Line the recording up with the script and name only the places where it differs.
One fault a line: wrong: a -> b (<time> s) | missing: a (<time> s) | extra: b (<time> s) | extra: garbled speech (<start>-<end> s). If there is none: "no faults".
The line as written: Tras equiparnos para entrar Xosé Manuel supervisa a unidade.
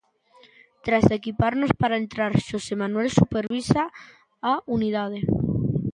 no faults